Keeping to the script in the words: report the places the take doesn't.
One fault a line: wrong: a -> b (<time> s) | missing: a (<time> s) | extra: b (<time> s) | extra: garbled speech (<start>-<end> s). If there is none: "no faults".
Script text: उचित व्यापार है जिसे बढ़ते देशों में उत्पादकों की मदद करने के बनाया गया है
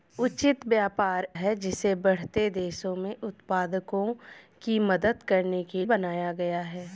no faults